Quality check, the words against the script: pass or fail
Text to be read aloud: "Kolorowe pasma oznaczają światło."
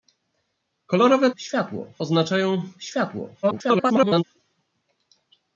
fail